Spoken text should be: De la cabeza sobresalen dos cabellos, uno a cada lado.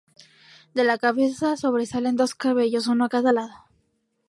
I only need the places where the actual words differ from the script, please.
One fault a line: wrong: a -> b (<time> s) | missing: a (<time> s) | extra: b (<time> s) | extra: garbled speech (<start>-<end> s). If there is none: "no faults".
no faults